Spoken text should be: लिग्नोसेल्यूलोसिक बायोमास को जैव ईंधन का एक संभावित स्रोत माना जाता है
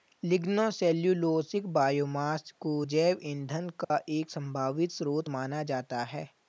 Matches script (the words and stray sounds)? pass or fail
fail